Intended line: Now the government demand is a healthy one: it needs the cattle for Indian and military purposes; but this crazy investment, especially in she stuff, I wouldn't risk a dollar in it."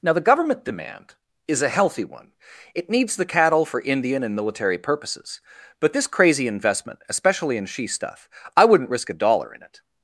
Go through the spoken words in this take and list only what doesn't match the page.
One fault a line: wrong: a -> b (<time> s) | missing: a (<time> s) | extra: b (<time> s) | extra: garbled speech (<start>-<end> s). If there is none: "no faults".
no faults